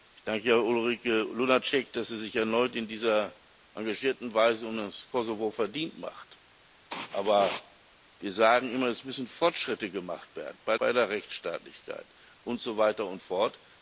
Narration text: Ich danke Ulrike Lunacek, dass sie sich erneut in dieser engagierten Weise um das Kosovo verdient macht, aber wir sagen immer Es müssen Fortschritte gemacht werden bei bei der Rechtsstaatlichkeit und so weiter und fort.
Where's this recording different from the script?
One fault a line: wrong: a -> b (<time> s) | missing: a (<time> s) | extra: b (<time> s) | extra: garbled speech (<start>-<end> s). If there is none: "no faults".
no faults